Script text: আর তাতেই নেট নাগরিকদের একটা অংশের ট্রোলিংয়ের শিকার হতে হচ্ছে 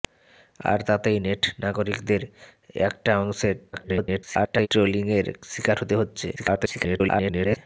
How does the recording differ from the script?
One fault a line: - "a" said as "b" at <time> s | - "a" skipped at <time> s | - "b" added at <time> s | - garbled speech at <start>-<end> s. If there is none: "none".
- garbled speech at 3.7-4.7 s
- garbled speech at 6.4-7.6 s